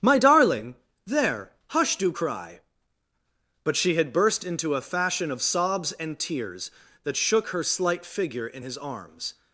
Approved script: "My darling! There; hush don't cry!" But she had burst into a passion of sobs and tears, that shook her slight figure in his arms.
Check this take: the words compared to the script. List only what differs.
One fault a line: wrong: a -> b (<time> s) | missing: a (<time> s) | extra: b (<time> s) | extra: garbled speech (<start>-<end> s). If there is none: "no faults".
wrong: don't -> do (2.0 s)
wrong: passion -> fashion (4.8 s)